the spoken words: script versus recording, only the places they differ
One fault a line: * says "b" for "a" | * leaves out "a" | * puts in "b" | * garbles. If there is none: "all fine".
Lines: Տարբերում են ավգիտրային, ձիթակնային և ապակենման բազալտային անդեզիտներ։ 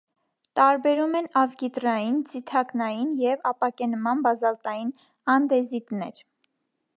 all fine